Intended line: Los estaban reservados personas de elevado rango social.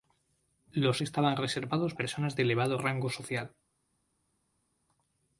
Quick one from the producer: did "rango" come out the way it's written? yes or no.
yes